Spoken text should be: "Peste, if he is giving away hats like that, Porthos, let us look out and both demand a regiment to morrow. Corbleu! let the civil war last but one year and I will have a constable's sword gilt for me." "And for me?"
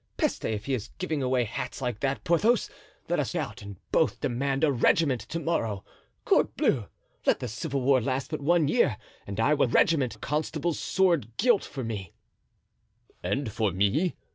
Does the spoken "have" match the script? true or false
false